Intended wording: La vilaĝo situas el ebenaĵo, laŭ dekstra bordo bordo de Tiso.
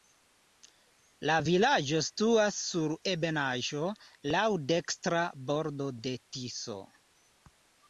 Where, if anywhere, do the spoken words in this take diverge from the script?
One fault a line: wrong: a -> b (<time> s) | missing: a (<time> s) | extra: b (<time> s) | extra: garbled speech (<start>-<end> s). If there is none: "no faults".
wrong: el -> sur (2.7 s)
missing: bordo (5.9 s)